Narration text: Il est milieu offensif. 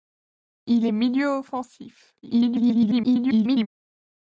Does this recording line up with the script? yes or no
no